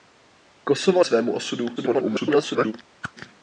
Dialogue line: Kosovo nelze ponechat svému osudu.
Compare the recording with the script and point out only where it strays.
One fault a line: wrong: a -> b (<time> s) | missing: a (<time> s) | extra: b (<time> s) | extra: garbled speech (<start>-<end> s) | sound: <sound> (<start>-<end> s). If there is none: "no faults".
missing: nelze ponechat (1.0 s)
extra: garbled speech (1.8-2.7 s)
sound: whoosh (3.0-3.1 s)